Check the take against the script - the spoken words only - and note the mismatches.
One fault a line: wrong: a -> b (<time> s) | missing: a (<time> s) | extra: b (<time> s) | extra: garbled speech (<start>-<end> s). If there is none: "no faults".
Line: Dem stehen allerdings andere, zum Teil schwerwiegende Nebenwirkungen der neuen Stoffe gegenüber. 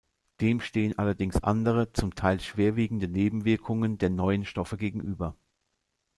no faults